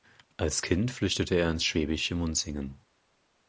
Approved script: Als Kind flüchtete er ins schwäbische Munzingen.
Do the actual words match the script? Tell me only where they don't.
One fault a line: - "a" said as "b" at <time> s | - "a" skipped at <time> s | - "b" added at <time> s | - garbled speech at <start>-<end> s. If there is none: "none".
none